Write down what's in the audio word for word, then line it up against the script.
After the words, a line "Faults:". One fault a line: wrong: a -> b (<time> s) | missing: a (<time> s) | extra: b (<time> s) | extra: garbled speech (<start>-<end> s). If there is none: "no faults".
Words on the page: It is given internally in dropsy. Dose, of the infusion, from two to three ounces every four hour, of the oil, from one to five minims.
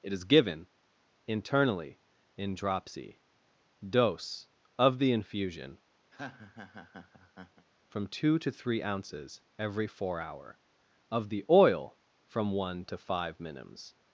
It is given internally in dropsy. Dose, of the infusion, from two to three ounces every four hour, of the oil, from one to five minims.
Faults:
no faults